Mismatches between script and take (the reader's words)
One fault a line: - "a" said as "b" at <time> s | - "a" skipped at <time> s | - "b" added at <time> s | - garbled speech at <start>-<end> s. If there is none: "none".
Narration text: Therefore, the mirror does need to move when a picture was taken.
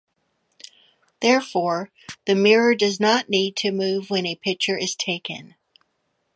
- "not" added at 3.0 s
- "was" said as "is" at 4.8 s